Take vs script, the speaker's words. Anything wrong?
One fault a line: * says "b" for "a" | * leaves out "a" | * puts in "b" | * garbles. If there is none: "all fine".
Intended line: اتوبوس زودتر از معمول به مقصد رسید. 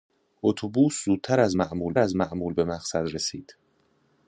* puts in "از معمول"